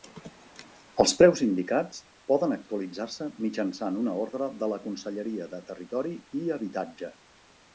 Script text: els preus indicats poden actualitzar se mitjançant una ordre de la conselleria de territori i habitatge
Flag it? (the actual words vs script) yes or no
no